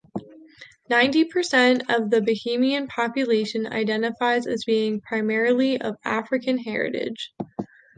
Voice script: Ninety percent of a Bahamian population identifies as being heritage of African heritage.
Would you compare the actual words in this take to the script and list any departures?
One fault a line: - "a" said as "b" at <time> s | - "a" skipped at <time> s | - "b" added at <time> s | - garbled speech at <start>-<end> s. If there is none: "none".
- "a" said as "the" at 2.1 s
- "heritage" said as "primarily" at 5.0 s